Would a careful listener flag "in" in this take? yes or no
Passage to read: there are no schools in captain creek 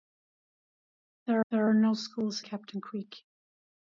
yes